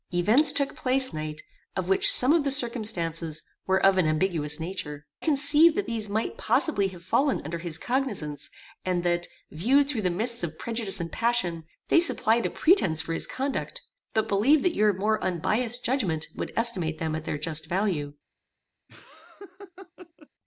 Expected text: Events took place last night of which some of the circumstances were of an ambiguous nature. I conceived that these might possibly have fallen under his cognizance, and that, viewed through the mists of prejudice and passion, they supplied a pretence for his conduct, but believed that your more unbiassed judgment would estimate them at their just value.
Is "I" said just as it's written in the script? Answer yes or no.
no